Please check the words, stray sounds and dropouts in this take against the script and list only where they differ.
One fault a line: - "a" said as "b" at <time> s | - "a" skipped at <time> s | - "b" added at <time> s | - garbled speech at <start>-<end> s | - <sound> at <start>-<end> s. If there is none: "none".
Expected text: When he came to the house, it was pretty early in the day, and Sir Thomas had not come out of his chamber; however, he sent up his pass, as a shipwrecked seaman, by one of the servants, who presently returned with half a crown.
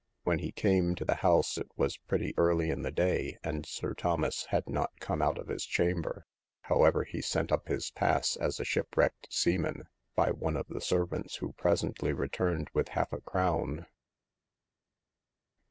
none